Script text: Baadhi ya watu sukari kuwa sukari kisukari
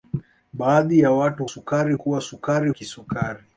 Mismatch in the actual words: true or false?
false